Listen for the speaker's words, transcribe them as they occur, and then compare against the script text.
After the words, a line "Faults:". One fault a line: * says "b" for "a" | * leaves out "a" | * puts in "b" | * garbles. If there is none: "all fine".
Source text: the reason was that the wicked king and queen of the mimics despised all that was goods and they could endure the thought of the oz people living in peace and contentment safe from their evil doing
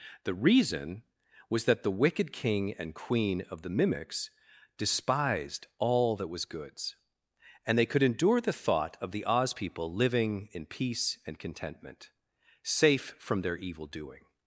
the reason was that the wicked king and queen of the mimics despised all that was goods and they could endure the thought of the oz people living in peace and contentment safe from their evil doing
Faults:
all fine